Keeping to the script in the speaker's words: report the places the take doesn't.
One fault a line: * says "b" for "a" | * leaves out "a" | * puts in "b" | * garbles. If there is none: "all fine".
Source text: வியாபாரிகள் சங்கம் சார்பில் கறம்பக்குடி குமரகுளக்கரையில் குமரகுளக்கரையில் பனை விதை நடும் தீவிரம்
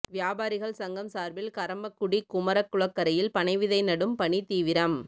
* leaves out "குமரகுளக்கரையில்"
* puts in "பணி"